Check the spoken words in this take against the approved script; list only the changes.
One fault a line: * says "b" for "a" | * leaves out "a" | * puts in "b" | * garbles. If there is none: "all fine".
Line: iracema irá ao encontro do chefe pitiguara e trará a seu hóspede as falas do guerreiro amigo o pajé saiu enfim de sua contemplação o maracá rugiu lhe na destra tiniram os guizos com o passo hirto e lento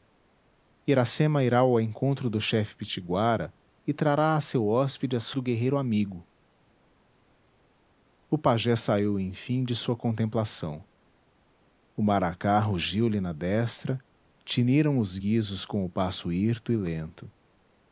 * leaves out "falas"